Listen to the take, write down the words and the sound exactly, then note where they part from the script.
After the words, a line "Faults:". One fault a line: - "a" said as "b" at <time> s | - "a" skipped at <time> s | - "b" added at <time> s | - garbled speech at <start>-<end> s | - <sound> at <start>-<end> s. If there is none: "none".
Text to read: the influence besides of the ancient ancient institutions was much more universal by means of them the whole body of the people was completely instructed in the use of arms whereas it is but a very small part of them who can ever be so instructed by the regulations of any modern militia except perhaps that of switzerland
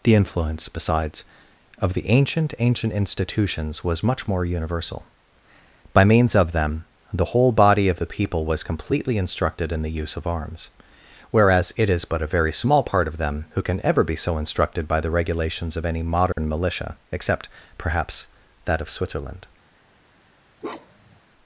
the influence besides of the ancient ancient institutions was much more universal by means of them the whole body of the people was completely instructed in the use of arms whereas it is but a very small part of them who can ever be so instructed by the regulations of any modern militia except perhaps that of switzerland
Faults:
- dropout at 16.3-16.4 s
- bark at 20.6-21.2 s